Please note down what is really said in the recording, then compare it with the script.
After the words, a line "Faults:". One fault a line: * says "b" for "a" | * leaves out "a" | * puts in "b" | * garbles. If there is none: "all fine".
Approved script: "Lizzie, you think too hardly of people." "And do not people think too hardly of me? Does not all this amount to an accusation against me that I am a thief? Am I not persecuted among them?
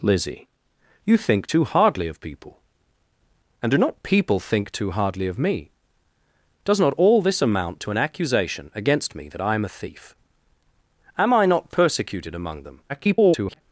"Lizzie, you think too hardly of people." "And do not people think too hardly of me? Does not all this amount to an accusation against me that I am a thief? Am I not persecuted among them? [garbled]
Faults:
* garbles